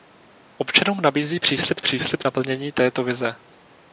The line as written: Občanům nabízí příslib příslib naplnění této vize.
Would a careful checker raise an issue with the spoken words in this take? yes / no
no